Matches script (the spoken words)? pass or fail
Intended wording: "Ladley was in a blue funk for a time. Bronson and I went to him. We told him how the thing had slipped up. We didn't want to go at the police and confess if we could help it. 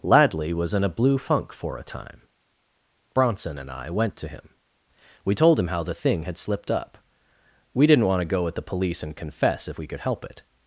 pass